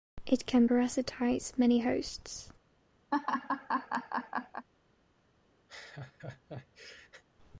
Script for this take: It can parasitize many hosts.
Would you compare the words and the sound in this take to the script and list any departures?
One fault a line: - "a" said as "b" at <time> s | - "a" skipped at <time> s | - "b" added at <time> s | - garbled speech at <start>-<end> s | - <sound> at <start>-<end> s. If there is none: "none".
- laugh at 3.1-4.7 s
- laugh at 5.7-7.2 s